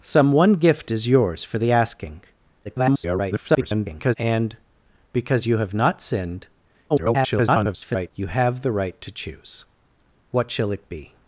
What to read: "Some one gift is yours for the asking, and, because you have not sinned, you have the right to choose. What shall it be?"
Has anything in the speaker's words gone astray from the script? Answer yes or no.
yes